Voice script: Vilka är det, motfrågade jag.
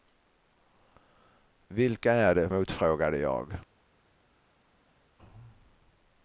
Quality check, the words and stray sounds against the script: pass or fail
pass